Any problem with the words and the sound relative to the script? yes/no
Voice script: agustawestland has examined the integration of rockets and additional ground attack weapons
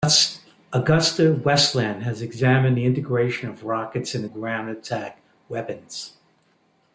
yes